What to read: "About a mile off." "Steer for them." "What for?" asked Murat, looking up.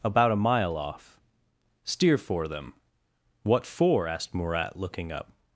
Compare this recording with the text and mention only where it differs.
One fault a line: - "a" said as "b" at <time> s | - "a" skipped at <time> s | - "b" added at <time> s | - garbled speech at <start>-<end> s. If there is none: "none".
none